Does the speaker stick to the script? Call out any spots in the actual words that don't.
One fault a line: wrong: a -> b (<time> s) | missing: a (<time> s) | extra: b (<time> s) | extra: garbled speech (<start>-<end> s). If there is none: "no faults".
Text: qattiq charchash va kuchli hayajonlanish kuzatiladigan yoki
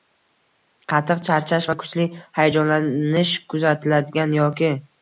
no faults